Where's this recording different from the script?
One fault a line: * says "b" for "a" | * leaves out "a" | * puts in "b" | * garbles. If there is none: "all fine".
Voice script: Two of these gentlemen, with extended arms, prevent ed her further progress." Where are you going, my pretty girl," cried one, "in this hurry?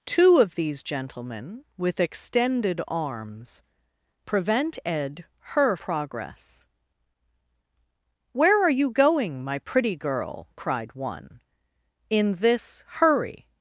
* leaves out "further"